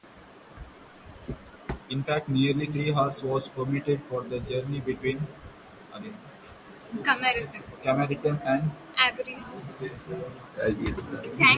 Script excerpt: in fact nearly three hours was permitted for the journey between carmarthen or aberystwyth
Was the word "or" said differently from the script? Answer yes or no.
yes